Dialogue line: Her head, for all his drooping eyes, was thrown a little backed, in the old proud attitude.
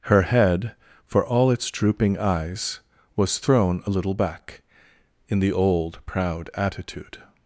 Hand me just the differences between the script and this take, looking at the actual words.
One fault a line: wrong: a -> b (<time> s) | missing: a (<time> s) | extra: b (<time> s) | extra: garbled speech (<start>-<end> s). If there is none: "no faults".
wrong: his -> its (1.5 s)
wrong: backed -> back (4.1 s)